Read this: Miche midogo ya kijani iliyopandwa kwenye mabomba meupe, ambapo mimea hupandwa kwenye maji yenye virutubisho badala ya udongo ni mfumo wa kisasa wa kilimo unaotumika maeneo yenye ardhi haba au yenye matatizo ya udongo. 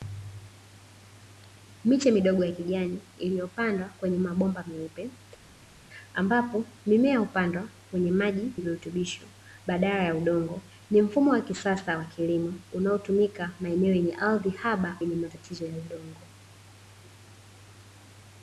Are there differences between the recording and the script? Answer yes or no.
yes